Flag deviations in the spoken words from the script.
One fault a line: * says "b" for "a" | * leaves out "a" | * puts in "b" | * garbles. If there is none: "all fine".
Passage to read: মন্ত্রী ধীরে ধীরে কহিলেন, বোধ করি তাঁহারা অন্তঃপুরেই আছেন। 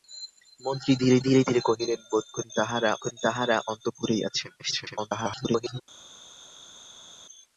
* puts in "ধীরে"
* puts in "করি তাঁহারা"
* garbles